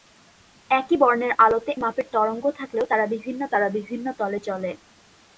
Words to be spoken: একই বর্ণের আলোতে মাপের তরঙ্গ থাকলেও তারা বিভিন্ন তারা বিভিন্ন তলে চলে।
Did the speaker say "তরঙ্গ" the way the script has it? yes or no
yes